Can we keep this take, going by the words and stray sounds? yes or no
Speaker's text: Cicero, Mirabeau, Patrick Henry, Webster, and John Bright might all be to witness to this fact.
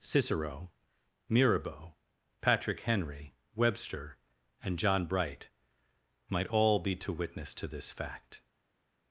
yes